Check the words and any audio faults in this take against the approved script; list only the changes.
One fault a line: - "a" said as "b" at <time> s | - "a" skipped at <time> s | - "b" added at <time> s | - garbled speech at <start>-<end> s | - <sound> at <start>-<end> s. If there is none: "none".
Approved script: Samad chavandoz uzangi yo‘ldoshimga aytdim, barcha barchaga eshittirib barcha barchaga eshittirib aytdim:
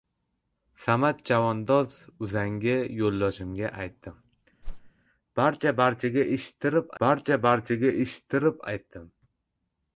- whoosh at 4.6-4.9 s